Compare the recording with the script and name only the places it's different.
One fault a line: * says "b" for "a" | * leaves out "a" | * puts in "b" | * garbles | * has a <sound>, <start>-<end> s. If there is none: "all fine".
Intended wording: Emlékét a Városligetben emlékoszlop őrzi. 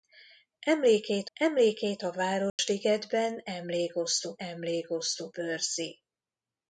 * puts in "emlékét"
* has a dropout, 2.5-2.6 s
* puts in "emlékoszlop"